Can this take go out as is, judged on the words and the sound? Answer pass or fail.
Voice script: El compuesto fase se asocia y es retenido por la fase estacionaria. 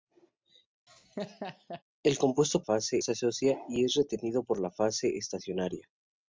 fail